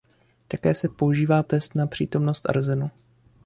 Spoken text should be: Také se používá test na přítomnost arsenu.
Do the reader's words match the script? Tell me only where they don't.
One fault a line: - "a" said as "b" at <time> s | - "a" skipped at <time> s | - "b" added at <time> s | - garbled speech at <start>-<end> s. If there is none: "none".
none